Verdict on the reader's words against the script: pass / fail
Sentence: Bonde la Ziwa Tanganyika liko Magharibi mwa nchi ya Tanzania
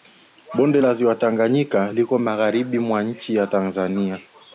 pass